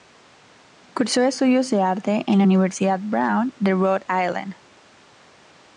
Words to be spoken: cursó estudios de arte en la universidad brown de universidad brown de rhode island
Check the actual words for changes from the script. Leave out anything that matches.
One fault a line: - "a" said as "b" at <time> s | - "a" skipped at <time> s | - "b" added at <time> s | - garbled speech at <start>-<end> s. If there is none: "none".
- "universidad brown de" skipped at 3.7 s